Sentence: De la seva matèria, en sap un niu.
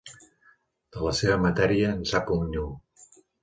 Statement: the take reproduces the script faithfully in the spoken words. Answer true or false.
true